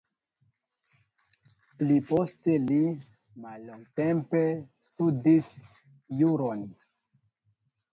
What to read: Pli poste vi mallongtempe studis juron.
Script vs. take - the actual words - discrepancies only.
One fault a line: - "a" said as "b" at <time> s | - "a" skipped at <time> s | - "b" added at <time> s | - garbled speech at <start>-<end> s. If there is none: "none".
- "vi" said as "li" at 2.6 s